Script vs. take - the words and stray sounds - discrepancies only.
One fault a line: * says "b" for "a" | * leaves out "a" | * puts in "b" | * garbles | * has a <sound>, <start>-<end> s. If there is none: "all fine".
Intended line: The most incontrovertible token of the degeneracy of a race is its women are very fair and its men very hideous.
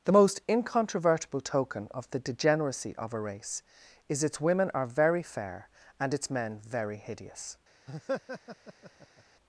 * has a laugh, 7.9-9.2 s